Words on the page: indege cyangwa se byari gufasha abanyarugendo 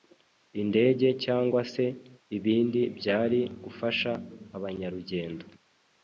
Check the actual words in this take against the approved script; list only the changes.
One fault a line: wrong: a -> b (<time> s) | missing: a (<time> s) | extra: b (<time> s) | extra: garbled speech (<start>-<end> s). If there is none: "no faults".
extra: ibindi (2.4 s)